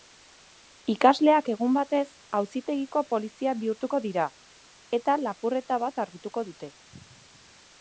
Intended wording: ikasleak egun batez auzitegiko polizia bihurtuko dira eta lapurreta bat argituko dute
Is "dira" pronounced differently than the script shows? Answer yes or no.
no